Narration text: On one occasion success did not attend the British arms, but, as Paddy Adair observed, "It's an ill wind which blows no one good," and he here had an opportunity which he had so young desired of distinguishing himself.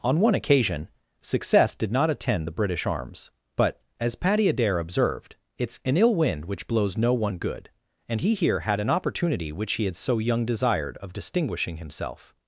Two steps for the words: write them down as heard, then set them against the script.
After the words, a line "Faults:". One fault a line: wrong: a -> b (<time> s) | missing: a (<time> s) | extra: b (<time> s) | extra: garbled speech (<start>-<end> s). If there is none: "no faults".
On one occasion success did not attend the British arms, but, as Paddy Adair observed, "It's an ill wind which blows no one good," and he here had an opportunity which he had so young desired of distinguishing himself.
Faults:
no faults